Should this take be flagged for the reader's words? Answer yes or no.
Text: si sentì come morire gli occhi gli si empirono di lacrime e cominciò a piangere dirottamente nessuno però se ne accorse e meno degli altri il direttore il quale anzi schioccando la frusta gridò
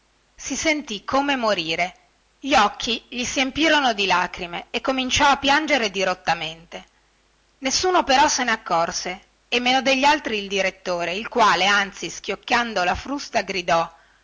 no